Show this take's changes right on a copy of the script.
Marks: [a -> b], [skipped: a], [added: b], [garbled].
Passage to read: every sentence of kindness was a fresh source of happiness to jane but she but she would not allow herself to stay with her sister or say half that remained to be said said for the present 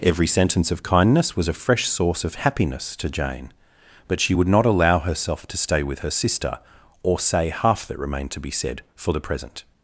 every sentence of kindness was a fresh source of happiness to jane but she [skipped: but she] would not allow herself to stay with her sister or say half that remained to be said [skipped: said] for the present